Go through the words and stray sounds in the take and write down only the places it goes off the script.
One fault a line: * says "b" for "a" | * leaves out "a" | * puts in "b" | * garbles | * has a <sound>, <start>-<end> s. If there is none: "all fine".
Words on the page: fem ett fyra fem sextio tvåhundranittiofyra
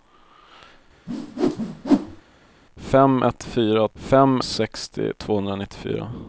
* has a whoosh, 1.1-2.2 s